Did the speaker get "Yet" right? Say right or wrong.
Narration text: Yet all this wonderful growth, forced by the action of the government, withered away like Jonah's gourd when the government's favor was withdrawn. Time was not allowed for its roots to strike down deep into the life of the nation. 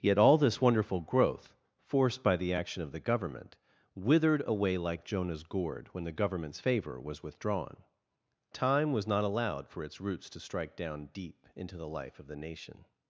right